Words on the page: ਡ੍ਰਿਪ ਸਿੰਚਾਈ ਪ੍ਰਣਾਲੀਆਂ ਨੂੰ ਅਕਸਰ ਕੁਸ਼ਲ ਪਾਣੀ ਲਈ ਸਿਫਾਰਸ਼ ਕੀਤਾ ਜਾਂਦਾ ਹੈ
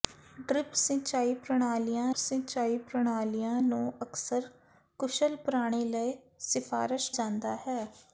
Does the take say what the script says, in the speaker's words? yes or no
no